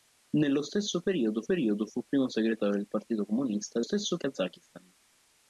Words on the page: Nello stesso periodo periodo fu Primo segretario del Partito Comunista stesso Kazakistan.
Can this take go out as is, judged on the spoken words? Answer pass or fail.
pass